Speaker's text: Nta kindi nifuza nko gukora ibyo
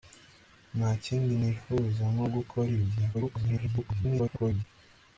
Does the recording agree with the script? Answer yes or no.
no